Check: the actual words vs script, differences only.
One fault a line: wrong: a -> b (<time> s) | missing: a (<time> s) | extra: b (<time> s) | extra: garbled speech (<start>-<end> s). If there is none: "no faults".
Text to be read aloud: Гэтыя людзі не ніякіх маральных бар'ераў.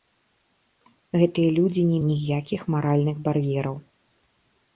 no faults